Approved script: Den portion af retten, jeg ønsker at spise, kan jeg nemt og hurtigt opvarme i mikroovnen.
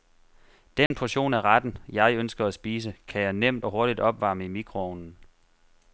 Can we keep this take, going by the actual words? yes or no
yes